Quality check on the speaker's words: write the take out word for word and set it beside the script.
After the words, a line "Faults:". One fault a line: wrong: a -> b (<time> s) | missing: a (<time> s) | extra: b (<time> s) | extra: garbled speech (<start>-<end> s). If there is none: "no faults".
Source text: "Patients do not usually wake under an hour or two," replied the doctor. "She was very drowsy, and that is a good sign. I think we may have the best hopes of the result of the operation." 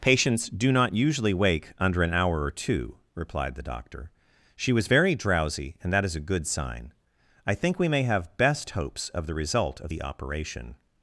"Patients do not usually wake under an hour or two," replied the doctor. "She was very drowsy, and that is a good sign. I think we may have best hopes of the result of the operation."
Faults:
missing: the (8.3 s)